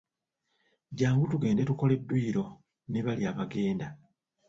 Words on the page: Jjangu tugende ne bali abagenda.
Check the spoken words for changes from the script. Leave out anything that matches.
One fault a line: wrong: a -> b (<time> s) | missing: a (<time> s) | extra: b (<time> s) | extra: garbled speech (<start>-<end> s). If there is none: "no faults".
extra: tukole dduyiro (1.7 s)